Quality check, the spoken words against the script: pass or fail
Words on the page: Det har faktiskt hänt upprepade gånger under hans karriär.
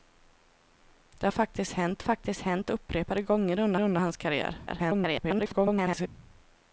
fail